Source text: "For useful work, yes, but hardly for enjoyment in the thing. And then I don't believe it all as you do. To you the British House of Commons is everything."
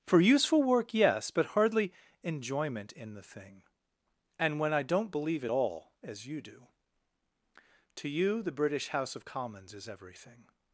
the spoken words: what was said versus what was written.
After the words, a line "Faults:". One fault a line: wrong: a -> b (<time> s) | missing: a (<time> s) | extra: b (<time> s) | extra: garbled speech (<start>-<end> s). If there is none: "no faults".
"For useful work, yes, but hardly enjoyment in the thing. And when I don't believe it all as you do. To you the British House of Commons is everything."
Faults:
missing: for (1.9 s)
wrong: then -> when (4.6 s)